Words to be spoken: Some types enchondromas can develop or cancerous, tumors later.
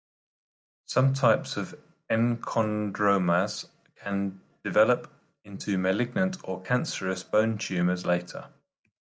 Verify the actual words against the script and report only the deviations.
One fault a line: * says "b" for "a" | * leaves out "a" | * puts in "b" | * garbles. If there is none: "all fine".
* puts in "of"
* puts in "into malignant"
* puts in "bone"